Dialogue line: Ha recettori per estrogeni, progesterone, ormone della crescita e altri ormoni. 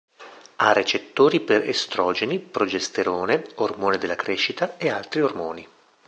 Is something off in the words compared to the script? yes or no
no